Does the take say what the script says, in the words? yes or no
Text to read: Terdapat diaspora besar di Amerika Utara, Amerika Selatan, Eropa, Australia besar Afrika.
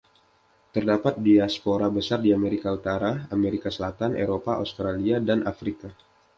no